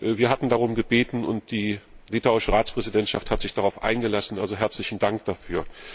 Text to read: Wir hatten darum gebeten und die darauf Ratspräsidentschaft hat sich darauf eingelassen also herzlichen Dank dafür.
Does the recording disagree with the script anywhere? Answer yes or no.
yes